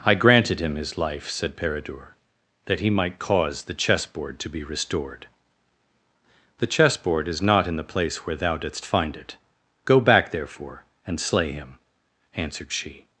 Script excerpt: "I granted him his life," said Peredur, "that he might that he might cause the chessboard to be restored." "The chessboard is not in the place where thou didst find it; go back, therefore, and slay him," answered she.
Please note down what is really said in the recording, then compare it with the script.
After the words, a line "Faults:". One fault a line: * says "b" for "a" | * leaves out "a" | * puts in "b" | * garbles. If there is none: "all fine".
"I granted him his life," said Peredur, "that he might cause the chessboard to be restored." "The chessboard is not in the place where thou didst find it; go back, therefore, and slay him," answered she.
Faults:
* leaves out "that he might"